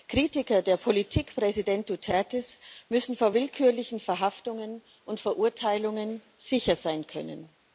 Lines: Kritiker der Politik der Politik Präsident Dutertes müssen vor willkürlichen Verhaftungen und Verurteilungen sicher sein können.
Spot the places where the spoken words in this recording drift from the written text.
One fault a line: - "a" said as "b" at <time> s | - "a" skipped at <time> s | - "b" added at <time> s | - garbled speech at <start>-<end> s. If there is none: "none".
- "der Politik" skipped at 1.4 s